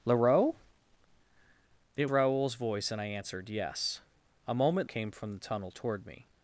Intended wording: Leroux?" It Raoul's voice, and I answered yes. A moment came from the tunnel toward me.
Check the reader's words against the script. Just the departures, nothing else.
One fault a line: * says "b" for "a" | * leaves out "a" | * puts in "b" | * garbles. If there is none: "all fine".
all fine